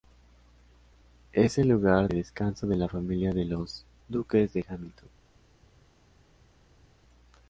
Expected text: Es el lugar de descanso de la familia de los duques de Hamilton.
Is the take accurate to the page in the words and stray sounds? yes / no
no